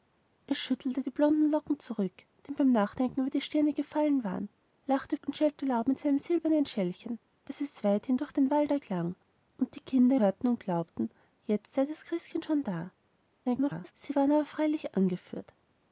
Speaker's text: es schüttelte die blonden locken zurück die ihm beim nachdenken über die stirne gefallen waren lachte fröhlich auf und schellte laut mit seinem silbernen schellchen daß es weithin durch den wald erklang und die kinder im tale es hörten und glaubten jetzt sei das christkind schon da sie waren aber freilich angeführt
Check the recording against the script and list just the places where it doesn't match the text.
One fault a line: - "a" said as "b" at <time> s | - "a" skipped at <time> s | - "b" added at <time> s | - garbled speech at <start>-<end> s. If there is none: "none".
- "fröhlich auf" skipped at 5.2 s
- "im tale es" skipped at 10.2 s
- garbled speech at 13.4-13.9 s